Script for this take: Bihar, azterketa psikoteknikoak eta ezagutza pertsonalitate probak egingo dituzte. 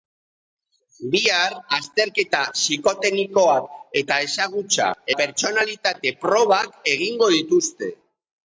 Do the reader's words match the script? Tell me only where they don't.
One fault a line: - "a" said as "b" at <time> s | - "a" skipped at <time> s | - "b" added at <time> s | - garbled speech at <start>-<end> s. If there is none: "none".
none